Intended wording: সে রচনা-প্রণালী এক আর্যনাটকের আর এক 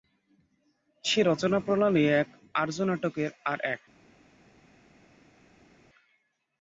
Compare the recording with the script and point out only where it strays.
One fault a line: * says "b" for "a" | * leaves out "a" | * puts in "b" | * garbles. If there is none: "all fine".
all fine